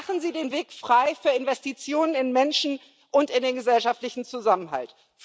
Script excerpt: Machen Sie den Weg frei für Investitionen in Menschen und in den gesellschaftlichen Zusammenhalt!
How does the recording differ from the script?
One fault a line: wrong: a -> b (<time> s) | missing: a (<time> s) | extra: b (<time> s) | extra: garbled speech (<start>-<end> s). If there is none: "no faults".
no faults